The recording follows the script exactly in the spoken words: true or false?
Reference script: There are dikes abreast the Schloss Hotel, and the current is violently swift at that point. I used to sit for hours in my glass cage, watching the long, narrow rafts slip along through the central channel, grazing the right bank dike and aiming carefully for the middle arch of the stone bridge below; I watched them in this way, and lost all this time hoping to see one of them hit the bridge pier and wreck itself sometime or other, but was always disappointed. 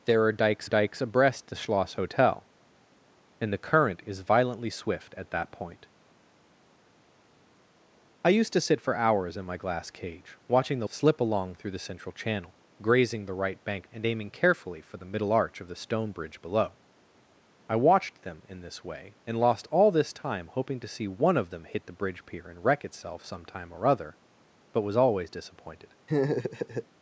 false